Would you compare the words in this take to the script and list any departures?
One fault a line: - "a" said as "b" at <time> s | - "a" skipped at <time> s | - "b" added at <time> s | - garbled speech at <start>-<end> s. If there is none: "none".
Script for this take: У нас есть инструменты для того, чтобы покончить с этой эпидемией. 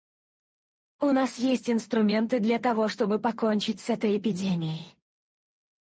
none